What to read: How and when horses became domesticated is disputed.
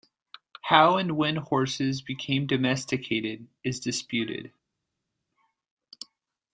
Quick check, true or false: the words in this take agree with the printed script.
true